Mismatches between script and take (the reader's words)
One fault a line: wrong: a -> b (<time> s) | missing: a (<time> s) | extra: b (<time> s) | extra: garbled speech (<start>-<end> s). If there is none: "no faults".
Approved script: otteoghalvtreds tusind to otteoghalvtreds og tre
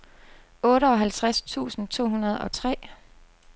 wrong: otteoghalvtreds -> hundrede (2.1 s)